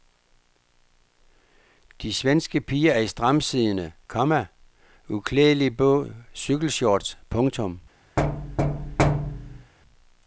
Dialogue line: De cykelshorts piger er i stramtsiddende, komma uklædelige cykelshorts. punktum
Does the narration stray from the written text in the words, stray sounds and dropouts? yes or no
yes